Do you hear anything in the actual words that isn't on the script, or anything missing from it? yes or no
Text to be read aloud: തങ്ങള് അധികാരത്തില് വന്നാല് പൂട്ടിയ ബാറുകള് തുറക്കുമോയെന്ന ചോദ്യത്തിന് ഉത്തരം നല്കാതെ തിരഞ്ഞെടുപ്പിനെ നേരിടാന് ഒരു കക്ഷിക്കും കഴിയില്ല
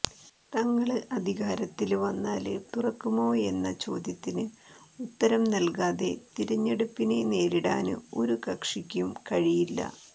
yes